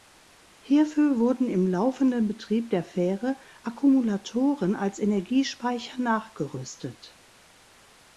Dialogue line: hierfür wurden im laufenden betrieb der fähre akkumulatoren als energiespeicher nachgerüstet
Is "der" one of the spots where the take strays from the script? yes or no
no